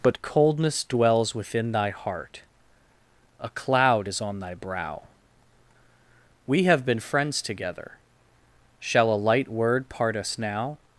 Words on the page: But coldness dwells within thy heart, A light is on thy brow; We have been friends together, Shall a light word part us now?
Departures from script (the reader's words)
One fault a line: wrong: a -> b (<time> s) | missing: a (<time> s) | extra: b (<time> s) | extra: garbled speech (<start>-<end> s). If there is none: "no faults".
wrong: light -> cloud (3.5 s)